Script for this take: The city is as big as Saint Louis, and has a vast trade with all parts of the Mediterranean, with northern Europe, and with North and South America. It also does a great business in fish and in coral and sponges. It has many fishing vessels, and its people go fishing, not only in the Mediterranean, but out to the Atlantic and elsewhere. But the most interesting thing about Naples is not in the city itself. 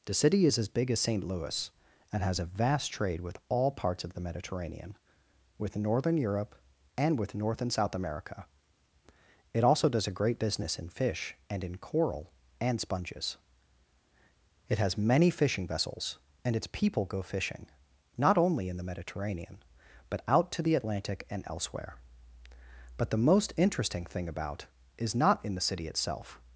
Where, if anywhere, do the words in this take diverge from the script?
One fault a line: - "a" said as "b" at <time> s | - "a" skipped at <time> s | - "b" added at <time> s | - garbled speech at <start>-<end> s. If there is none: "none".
- "Naples" skipped at 24.7 s